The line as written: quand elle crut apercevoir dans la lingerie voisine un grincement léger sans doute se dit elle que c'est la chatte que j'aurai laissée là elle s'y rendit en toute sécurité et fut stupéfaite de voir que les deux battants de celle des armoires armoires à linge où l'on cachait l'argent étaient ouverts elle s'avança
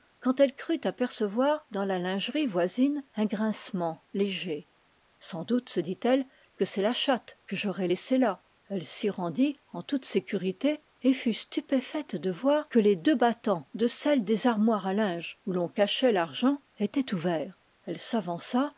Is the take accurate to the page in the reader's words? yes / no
no